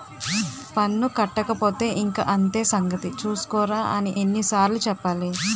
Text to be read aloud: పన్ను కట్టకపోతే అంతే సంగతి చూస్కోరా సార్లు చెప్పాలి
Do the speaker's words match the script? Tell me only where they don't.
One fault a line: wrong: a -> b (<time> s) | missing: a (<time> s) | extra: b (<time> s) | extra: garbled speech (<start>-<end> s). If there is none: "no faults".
extra: ఇంక (2.0 s)
extra: అని ఎన్ని (4.0 s)